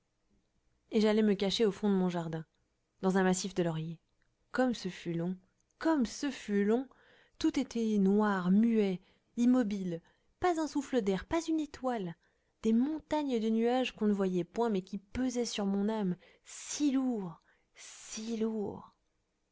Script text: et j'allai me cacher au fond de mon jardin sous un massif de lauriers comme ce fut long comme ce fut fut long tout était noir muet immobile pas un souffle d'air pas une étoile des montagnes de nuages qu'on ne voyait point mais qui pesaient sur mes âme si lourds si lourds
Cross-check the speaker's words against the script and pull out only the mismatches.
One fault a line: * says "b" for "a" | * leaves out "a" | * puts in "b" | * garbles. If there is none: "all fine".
* says "dans" for "sous"
* leaves out "fut"
* says "mon" for "mes"